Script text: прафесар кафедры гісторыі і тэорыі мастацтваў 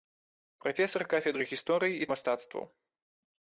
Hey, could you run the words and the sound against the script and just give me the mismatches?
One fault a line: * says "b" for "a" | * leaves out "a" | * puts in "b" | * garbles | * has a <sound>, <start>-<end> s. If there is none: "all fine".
* leaves out "тэорыі"